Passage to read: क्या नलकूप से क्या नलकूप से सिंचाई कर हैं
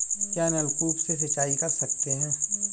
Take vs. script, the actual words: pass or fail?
fail